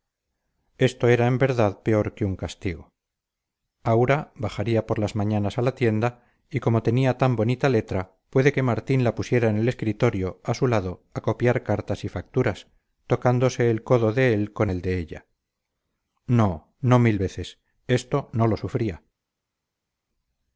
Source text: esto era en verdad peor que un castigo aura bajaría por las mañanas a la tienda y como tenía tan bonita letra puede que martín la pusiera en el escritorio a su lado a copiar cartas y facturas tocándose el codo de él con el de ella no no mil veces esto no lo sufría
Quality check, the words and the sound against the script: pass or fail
pass